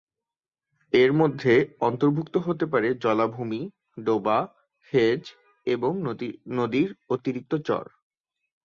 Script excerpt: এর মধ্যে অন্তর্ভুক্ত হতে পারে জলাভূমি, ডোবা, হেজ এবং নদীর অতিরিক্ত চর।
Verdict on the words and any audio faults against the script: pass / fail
pass